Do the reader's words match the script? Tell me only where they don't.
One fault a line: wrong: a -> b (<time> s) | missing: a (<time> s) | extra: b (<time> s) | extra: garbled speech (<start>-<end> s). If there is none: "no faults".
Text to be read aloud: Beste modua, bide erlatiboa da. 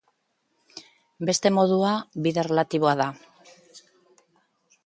no faults